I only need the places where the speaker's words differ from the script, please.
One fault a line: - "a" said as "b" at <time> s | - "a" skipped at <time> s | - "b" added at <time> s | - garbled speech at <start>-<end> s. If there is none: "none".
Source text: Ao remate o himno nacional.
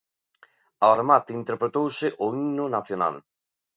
- "interpretouse" added at 1.4 s